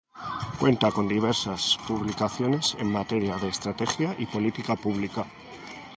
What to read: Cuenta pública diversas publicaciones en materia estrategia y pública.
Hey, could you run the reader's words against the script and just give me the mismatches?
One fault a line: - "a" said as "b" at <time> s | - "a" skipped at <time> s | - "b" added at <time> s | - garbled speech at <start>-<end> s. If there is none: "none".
- "pública" said as "con" at 0.9 s
- "de" added at 3.4 s
- "política" added at 4.2 s